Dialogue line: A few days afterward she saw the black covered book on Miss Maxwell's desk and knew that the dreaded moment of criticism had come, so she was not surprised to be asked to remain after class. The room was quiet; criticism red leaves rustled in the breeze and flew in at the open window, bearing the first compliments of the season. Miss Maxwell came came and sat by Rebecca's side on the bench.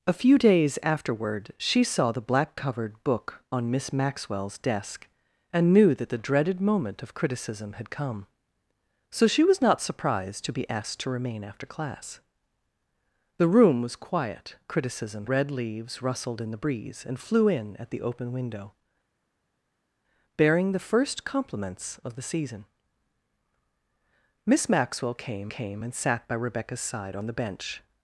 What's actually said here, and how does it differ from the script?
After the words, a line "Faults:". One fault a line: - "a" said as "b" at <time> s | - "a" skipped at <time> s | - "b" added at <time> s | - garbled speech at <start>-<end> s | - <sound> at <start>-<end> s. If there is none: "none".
A few days afterward she saw the black covered book on Miss Maxwell's desk and knew that the dreaded moment of criticism had come, so she was not surprised to be asked to remain after class. The room was quiet; criticism red leaves rustled in the breeze and flew in at the open window, bearing the first compliments of the season. Miss Maxwell came came and sat by Rebecca's side on the bench.
Faults:
none